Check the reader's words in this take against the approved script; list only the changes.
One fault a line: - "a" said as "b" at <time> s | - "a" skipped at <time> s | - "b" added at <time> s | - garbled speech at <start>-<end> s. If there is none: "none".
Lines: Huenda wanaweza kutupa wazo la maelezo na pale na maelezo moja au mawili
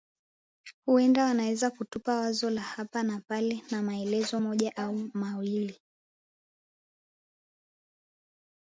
- "maelezo" said as "hapa" at 2.6 s